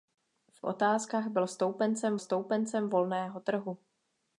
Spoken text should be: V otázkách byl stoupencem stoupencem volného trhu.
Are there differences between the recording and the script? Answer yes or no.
no